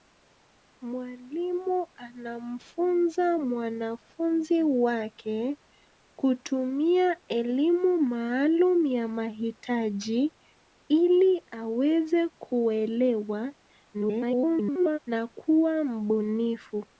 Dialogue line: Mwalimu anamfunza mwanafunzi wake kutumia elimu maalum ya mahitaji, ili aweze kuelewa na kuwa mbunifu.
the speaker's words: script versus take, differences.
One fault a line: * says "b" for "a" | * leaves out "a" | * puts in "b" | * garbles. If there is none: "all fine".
* garbles